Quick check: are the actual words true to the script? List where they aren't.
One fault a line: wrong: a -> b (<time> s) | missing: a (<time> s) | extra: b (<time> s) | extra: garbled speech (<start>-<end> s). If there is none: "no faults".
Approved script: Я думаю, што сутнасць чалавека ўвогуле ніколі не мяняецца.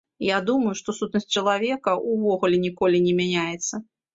no faults